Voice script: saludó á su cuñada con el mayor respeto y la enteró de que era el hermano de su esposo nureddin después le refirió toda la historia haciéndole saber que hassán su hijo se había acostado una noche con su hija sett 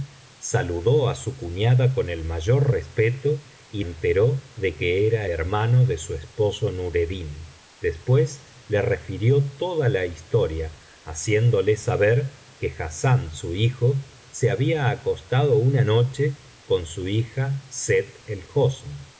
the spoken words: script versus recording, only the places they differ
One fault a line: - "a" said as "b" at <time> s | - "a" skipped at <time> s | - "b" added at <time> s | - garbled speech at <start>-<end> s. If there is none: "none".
- "la" skipped at 3.8 s
- "el" skipped at 5.3 s